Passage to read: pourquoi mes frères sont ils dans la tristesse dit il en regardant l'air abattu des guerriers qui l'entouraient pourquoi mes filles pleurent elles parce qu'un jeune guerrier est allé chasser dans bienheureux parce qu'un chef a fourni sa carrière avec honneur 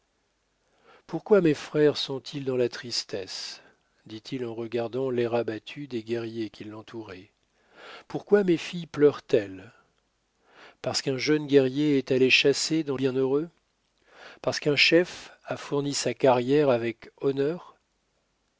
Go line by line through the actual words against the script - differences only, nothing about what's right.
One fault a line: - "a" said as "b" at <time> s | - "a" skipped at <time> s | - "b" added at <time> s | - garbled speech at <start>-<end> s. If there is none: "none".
none